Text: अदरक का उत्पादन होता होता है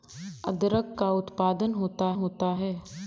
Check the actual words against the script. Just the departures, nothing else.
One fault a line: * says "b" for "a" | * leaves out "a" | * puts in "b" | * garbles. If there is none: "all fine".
all fine